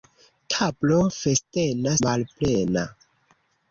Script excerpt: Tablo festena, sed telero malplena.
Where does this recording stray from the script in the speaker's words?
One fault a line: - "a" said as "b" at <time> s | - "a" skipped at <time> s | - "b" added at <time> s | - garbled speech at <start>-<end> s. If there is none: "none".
- "sed telero" skipped at 1.9 s